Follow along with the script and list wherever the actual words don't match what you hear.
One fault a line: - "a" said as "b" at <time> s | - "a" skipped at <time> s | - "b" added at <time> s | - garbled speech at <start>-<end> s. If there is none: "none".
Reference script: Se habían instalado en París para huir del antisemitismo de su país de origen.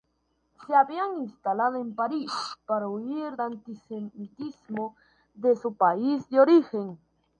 - "del" skipped at 3.4 s